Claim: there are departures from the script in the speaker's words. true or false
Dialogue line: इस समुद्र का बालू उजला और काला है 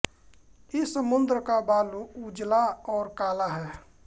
false